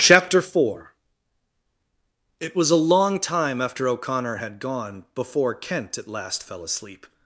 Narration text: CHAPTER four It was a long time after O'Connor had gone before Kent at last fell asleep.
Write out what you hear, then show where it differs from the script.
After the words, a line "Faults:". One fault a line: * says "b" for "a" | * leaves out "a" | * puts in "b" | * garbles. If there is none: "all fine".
CHAPTER four It was a long time after O'Connor had gone before Kent at last fell asleep.
Faults:
all fine